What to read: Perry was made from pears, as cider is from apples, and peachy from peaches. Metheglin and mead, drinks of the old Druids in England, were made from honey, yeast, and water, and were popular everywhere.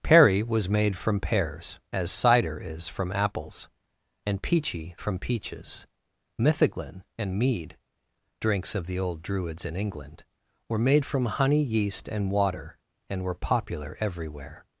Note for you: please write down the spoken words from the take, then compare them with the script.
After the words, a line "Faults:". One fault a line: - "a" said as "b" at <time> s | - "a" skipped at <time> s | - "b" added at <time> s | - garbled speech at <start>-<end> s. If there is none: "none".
Perry was made from pears, as cider is from apples, and peachy from peaches. Metheglin and mead, drinks of the old Druids in England, were made from honey, yeast, and water, and were popular everywhere.
Faults:
none